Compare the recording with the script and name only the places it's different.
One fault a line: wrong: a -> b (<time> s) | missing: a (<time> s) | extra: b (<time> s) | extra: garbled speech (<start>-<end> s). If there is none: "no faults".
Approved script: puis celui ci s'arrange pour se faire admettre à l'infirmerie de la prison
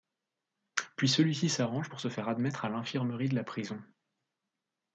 no faults